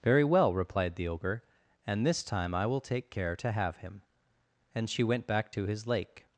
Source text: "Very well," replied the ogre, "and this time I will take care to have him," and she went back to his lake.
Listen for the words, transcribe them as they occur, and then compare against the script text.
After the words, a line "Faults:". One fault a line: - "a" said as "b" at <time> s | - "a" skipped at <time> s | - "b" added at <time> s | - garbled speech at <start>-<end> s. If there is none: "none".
"Very well," replied the ogre, "and this time I will take care to have him," and she went back to his lake.
Faults:
none